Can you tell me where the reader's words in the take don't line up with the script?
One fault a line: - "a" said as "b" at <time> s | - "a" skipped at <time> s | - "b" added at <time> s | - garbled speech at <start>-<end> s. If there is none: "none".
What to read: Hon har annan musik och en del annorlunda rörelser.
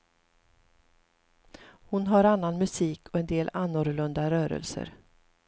none